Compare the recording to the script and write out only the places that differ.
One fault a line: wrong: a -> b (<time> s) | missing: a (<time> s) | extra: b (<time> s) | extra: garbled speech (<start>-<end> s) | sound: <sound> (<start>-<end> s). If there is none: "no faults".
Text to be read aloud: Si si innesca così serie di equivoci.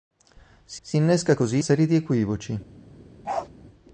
sound: bark (3.2-3.5 s)